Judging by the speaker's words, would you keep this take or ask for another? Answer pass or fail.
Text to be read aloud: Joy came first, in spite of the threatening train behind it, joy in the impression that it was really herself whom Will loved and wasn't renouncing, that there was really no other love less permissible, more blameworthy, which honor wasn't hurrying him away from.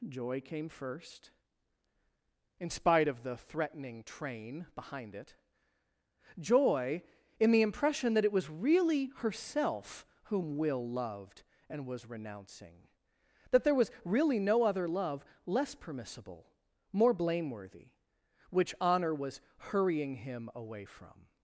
fail